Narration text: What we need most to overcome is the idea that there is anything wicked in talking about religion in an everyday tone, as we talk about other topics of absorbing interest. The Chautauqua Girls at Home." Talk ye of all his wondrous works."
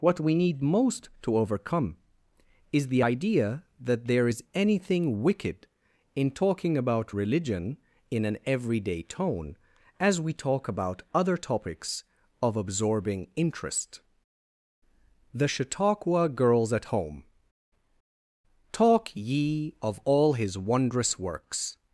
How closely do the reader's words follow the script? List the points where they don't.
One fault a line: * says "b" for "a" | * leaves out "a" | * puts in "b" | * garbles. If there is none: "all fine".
all fine